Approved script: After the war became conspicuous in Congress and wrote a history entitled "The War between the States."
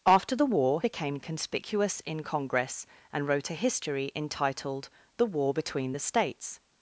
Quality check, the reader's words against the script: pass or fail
pass